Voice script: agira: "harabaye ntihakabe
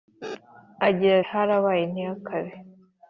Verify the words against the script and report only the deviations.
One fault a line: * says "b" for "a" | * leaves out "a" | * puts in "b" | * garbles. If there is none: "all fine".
all fine